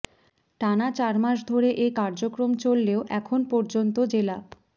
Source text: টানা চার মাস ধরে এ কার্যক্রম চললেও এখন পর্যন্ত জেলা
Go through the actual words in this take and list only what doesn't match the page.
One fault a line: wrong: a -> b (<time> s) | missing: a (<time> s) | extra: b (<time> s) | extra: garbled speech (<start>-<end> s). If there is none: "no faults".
no faults